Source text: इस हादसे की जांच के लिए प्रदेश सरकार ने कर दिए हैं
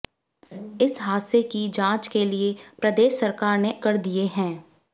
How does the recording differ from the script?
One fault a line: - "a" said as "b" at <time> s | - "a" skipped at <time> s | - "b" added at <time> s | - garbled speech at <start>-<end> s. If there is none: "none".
none